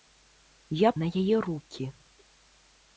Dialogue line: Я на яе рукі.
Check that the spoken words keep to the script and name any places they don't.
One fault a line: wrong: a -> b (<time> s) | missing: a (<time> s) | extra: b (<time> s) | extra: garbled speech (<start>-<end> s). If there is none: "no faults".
no faults